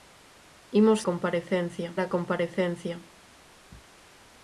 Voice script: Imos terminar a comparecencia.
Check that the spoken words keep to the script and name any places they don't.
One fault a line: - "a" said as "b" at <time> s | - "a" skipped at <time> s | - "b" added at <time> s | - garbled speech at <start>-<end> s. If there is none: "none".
- "terminar" said as "comparecencia" at 1.0 s